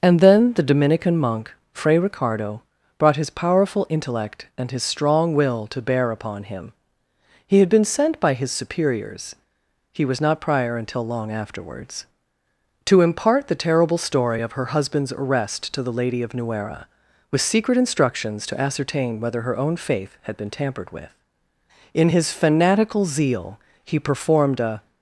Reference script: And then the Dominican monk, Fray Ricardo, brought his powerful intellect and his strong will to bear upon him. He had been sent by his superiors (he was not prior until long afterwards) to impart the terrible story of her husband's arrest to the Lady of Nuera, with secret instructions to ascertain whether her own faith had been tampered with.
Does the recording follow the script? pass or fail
fail